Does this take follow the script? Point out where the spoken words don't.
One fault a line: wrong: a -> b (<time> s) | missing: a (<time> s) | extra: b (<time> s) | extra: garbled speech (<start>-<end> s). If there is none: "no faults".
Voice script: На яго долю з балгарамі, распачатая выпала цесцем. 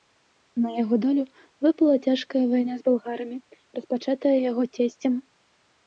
extra: выпала цяжкая вайна (1.7 s)
wrong: выпала -> яго (4.5 s)